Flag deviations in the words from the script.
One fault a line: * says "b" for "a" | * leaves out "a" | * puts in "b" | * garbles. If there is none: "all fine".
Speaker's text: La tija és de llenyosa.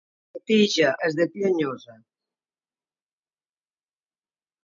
all fine